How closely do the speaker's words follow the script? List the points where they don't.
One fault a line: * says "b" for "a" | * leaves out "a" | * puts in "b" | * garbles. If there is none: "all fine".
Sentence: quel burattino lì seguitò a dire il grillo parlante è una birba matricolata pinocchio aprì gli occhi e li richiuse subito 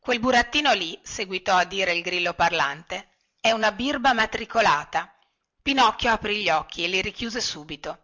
all fine